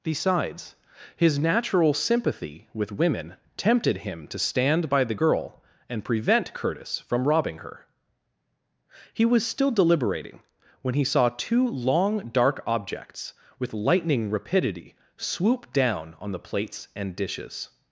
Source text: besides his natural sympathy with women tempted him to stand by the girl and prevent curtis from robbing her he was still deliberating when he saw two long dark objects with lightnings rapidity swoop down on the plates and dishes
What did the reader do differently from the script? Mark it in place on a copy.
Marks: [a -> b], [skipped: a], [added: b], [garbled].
besides his natural sympathy with women tempted him to stand by the girl and prevent curtis from robbing her he was still deliberating when he saw two long dark objects with [lightnings -> lightning] rapidity swoop down on the plates and dishes